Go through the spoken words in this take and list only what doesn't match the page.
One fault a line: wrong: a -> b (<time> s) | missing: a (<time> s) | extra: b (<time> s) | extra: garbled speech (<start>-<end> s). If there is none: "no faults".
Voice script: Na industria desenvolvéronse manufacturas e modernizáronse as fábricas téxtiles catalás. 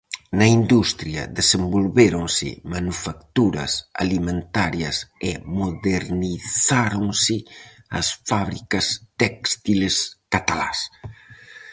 extra: alimentarias (4.0 s)